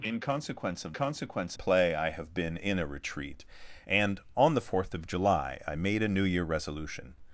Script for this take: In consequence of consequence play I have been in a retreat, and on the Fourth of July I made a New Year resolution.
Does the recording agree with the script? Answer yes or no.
yes